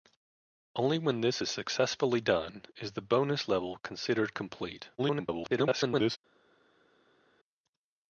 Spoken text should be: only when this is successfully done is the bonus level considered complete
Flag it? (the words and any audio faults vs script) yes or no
yes